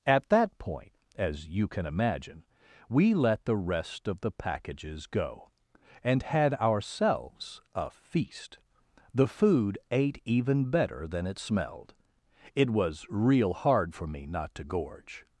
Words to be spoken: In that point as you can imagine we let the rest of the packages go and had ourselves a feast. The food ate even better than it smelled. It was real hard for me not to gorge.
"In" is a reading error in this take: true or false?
true